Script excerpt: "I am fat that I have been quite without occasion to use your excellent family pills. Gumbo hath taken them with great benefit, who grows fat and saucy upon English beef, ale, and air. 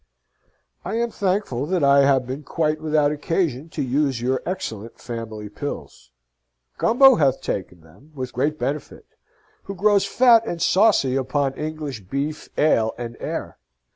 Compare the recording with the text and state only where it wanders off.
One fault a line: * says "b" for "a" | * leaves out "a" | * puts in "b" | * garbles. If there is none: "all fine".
* says "thankful" for "fat"